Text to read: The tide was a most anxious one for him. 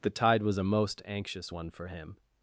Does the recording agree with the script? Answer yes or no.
yes